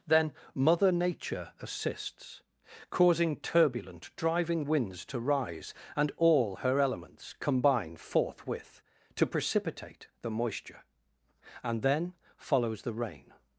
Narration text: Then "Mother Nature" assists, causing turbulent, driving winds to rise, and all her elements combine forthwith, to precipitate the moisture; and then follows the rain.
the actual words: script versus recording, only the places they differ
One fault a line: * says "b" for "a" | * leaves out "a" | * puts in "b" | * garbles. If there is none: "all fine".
all fine